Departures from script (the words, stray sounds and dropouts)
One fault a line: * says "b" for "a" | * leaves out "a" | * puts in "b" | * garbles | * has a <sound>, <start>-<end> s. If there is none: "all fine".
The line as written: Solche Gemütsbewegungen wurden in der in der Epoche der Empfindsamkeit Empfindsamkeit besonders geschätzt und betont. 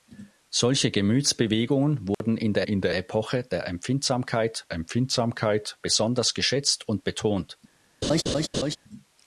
* has a dropout, 2.1-2.2 s
* has a laugh, 8.0-8.8 s